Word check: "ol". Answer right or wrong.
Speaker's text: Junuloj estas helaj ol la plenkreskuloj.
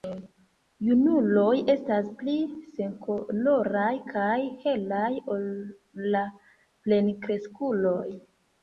right